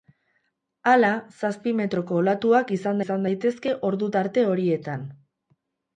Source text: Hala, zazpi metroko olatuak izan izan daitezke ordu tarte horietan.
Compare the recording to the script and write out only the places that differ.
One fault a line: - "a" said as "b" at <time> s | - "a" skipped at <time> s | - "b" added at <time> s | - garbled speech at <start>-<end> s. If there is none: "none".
none